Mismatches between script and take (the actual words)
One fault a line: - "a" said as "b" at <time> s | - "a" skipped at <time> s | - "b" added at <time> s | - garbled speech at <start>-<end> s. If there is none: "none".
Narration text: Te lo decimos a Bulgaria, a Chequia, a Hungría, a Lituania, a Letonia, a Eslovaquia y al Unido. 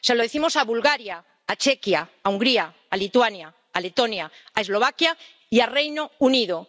- "Te" said as "Se" at 0.0 s
- "Reino" added at 5.7 s